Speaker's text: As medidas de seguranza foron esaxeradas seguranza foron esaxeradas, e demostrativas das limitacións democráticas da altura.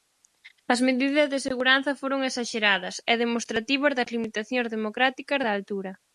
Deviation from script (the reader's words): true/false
true